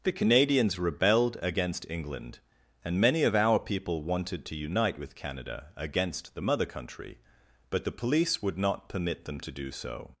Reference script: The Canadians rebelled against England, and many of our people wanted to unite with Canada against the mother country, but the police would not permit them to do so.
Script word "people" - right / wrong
right